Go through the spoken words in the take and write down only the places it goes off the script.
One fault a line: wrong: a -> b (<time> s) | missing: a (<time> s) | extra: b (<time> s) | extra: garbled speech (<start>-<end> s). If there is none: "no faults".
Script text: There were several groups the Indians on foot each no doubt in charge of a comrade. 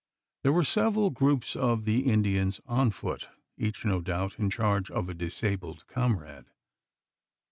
extra: of (1.6 s)
extra: disabled (5.1 s)